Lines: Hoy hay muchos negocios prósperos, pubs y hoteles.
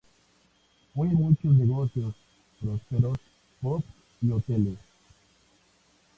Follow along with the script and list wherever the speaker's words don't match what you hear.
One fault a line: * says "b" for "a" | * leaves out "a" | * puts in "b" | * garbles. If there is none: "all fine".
all fine